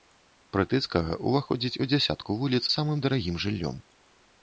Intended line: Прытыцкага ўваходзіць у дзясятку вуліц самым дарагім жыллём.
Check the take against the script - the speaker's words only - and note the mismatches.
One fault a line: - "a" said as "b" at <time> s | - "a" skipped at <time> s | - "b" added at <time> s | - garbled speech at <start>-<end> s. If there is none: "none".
none